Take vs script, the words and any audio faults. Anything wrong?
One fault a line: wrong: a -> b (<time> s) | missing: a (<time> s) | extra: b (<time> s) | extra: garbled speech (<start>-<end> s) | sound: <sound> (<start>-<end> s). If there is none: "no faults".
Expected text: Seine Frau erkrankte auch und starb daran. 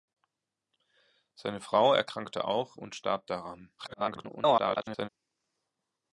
extra: garbled speech (3.8-5.1 s)